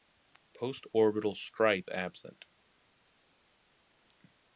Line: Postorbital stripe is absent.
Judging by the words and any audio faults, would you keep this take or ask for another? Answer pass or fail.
fail